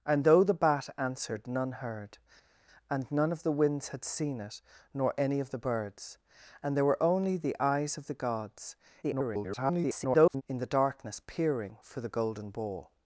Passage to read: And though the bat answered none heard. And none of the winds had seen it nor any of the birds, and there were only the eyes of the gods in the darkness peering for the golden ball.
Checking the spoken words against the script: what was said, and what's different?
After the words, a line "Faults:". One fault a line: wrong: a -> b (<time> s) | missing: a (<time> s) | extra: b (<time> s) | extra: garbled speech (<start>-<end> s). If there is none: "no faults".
And though the bat answered none heard. And none of the winds had seen it nor any of the birds, and there were only the eyes of the gods [garbled] in the darkness peering for the golden ball.
Faults:
extra: garbled speech (9.0-10.4 s)